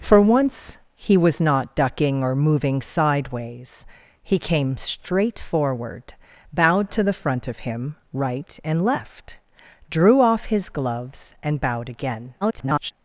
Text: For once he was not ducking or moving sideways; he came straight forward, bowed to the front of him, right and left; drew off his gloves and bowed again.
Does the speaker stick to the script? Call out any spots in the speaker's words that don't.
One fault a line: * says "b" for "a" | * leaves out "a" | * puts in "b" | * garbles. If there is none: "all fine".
* garbles